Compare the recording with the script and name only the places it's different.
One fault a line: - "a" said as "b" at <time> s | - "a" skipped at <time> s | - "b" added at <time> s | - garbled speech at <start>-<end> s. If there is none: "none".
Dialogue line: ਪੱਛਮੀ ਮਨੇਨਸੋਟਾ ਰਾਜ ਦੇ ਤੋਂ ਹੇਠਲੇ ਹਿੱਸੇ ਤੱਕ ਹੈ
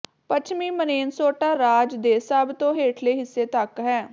- "ਸਭ" added at 2.2 s